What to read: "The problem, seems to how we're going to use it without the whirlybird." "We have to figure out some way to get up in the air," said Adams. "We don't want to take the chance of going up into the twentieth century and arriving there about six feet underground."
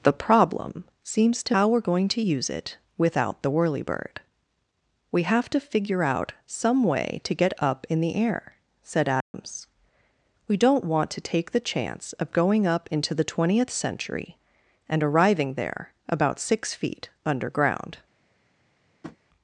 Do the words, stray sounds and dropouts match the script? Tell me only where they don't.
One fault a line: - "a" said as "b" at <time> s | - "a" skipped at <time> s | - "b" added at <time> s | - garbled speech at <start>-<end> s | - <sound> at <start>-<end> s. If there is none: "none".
- dropout at 9.2-9.3 s
- tap at 19.0-19.2 s